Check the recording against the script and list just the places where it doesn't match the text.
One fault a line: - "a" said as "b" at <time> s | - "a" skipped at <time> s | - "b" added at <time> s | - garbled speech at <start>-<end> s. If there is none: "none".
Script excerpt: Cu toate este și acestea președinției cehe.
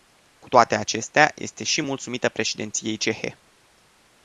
- "acestea" added at 0.8 s
- "acestea" said as "mulțumită" at 1.8 s